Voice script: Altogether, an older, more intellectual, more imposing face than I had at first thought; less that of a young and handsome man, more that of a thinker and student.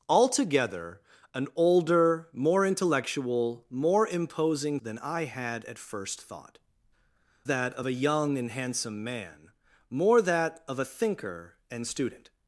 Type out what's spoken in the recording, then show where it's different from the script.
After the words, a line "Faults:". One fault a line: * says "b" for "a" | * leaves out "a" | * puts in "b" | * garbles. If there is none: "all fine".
Altogether, an older, more intellectual, more imposing than I had at first thought; that of a young and handsome man, more that of a thinker and student.
Faults:
* leaves out "face"
* leaves out "less"